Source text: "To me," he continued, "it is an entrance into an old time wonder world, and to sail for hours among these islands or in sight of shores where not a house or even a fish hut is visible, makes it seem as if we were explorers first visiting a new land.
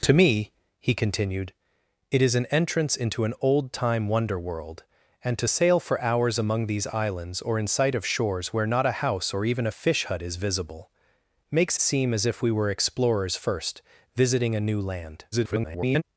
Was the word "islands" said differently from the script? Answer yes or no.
no